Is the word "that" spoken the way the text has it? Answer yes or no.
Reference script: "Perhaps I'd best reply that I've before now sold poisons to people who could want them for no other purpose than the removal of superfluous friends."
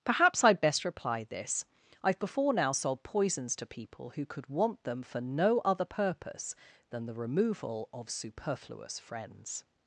no